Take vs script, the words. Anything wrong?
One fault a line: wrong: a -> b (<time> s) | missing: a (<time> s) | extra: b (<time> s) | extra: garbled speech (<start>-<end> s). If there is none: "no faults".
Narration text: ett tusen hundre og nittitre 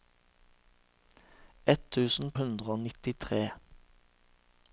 no faults